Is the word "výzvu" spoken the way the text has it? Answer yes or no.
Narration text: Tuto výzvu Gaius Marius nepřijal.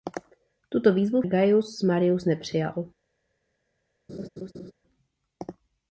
yes